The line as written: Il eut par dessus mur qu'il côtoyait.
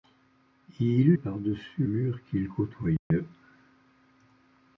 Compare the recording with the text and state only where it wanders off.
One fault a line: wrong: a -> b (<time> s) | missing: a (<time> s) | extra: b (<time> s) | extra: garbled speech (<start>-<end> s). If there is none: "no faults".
no faults